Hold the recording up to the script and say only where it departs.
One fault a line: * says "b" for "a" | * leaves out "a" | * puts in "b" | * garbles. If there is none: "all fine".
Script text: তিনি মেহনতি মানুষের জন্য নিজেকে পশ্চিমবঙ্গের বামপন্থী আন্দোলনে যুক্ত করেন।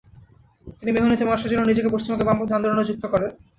all fine